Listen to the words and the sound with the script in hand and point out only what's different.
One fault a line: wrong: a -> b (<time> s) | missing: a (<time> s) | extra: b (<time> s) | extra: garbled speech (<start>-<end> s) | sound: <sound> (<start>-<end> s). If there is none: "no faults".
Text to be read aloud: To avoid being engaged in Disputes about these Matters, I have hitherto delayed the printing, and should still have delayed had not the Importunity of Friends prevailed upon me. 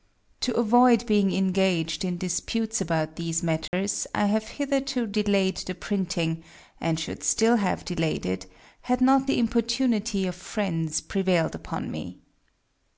sound: dropout (3.7-3.7 s)
extra: it (8.2 s)